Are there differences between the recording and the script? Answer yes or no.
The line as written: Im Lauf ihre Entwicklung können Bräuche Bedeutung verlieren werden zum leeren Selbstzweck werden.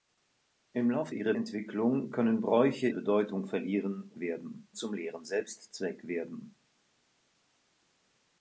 no